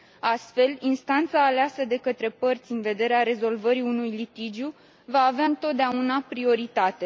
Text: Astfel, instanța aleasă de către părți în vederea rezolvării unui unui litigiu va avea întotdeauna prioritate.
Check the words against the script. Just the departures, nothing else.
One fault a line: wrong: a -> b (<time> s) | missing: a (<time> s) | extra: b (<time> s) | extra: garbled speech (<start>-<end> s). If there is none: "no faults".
missing: unui (4.1 s)